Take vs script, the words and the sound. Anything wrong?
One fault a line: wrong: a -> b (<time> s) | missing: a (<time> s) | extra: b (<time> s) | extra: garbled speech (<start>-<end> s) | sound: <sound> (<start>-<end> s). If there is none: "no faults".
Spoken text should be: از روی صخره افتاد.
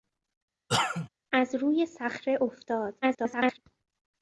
sound: cough (0.7-1.1 s)
extra: garbled speech (3.0-3.6 s)